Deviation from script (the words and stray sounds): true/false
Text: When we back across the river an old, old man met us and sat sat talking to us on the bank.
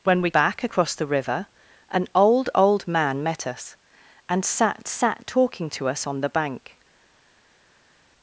false